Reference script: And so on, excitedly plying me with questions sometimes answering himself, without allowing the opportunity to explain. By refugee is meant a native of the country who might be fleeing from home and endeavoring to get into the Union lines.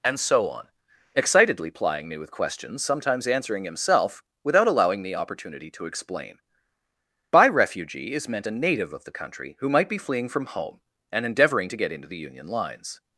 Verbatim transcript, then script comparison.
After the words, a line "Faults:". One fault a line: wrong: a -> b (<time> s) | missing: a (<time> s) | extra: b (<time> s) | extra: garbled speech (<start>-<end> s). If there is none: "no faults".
And so on, excitedly plying me with questions sometimes answering himself, without allowing the opportunity to explain. By refugee is meant a native of the country who might be fleeing from home and endeavoring to get into the Union lines.
Faults:
no faults